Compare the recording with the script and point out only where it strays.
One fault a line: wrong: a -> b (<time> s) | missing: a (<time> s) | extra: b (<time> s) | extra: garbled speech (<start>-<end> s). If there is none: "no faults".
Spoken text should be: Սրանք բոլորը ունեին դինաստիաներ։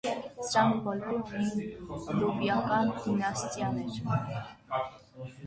extra: լուվիական (2.2 s)